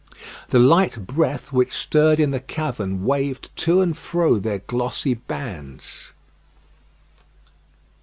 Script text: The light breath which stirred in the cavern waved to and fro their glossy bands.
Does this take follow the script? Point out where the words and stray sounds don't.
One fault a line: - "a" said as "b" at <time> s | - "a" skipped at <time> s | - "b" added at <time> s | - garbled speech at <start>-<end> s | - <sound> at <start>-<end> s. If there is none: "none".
none